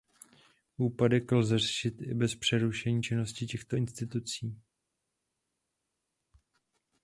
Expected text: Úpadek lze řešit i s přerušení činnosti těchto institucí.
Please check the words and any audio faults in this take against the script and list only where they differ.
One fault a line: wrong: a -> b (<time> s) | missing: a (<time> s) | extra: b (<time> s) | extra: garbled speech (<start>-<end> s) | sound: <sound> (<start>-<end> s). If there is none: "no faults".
wrong: s -> bez (2.1 s)